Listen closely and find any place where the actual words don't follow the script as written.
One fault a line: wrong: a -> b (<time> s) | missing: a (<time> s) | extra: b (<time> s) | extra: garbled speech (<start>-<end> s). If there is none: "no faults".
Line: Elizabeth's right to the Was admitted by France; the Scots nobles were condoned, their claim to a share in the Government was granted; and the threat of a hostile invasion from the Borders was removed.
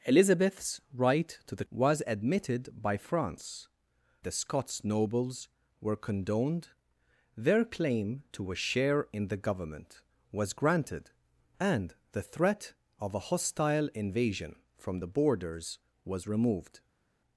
no faults